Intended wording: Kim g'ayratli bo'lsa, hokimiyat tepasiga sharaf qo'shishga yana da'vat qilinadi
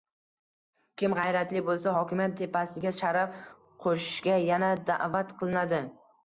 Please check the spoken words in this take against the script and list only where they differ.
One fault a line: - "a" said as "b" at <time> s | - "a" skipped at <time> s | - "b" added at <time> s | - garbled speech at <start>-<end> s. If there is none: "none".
none